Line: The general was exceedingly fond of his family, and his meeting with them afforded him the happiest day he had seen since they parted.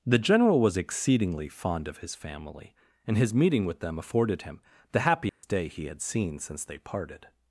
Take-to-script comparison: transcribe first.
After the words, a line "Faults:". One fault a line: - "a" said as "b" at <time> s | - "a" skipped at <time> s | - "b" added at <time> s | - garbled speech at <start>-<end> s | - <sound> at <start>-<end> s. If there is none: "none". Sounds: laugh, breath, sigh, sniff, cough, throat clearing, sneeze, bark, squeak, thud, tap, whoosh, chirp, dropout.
The general was exceedingly fond of his family, and his meeting with them afforded him the happiest day he had seen since they parted.
Faults:
- dropout at 5.3-5.4 s